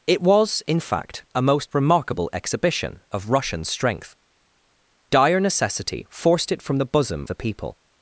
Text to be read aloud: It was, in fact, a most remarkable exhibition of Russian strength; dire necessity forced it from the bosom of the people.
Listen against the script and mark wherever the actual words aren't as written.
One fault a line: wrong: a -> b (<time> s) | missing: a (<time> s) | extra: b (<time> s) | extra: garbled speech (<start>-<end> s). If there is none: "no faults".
missing: of (7.3 s)